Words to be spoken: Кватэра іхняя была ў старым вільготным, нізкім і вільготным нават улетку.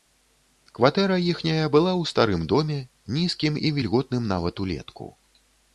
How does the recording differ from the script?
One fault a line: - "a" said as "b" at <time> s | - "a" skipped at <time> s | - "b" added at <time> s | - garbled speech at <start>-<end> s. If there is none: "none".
- "вільготным" said as "доме" at 2.5 s